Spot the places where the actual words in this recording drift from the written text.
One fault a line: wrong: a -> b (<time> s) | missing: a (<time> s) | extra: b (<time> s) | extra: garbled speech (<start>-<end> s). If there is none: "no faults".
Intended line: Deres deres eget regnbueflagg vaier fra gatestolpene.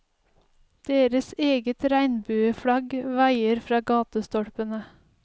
missing: deres (1.3 s)